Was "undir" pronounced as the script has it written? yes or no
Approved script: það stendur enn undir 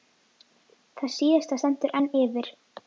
no